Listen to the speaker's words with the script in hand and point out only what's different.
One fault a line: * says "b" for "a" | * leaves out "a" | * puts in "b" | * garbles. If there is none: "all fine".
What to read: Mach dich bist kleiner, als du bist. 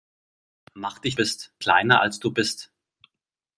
all fine